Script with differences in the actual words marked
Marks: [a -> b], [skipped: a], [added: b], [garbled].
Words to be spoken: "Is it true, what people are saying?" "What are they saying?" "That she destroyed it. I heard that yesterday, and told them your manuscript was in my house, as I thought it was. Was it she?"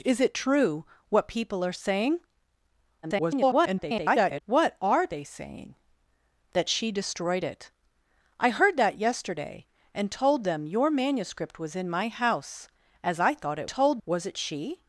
"Is it true, what people are saying?" [garbled] "What are they saying?" "That she destroyed it. I heard that yesterday, and told them your manuscript was in my house, as I thought it [was. -> told] Was it she?"